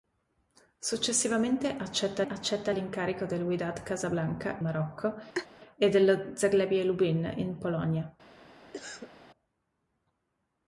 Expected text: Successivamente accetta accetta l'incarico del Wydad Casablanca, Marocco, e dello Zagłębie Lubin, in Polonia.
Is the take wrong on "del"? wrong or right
right